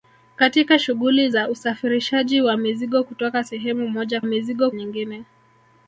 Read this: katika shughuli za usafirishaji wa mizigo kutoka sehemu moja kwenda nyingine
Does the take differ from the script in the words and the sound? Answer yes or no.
yes